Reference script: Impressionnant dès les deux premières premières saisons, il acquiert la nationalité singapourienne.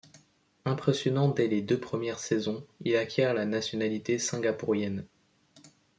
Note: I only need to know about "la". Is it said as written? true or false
true